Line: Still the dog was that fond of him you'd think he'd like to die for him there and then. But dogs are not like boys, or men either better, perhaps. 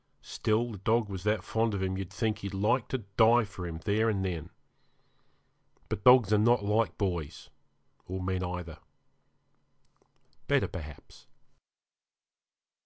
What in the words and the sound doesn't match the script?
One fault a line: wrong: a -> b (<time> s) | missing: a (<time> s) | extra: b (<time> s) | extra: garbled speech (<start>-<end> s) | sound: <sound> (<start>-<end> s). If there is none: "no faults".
no faults